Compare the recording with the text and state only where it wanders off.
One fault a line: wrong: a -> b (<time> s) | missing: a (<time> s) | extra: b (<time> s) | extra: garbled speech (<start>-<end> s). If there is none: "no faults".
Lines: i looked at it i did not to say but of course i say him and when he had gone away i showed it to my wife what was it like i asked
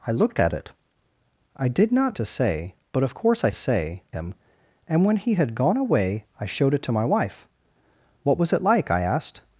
no faults